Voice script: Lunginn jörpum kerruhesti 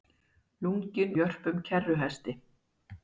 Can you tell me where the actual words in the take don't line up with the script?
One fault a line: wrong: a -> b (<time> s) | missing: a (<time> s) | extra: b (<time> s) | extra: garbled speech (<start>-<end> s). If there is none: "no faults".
no faults